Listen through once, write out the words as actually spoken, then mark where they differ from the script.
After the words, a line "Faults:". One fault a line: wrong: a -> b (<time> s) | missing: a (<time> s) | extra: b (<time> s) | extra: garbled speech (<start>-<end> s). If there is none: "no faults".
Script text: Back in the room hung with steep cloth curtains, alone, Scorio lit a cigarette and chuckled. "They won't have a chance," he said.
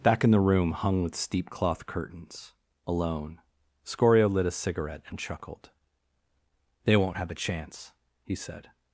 Back in the room hung with steep cloth curtains, alone, Scorio lit a cigarette and chuckled. "They won't have a chance," he said.
Faults:
no faults